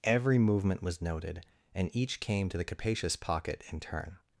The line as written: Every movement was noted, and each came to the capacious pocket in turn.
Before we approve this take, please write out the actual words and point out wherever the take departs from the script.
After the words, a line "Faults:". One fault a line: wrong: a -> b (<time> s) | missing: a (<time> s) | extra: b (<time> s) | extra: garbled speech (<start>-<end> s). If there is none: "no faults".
Every movement was noted, and each came to the capacious pocket in turn.
Faults:
no faults